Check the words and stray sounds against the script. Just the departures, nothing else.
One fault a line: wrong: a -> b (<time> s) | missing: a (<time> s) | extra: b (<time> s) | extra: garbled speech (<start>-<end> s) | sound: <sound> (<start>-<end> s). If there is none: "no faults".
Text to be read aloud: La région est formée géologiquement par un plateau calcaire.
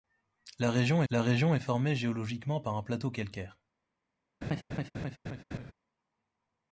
extra: la région (1.1 s)
sound: laugh (4.4-5.7 s)